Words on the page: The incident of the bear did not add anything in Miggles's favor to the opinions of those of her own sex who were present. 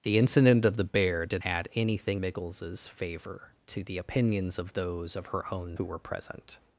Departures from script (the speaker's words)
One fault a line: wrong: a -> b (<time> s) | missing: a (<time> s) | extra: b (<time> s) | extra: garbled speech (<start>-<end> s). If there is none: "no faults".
missing: not (1.4 s)
missing: in (2.2 s)
missing: sex (5.8 s)